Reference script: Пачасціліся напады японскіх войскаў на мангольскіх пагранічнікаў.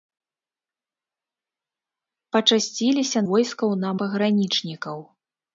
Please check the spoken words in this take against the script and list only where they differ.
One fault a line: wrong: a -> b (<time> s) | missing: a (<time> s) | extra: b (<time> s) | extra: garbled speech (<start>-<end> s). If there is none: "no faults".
missing: напады японскіх (3.2 s)
missing: мангольскіх (3.9 s)